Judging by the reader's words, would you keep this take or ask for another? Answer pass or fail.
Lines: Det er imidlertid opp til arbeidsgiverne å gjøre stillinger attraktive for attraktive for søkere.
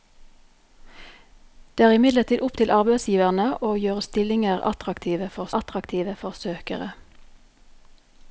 pass